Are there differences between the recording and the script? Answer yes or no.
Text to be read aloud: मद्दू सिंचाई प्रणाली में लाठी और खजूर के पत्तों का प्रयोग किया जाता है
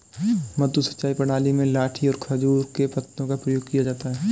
no